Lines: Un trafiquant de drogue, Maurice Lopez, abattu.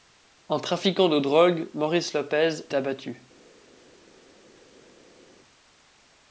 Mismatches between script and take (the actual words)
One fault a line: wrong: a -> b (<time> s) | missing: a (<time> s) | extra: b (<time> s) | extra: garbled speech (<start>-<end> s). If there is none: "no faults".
no faults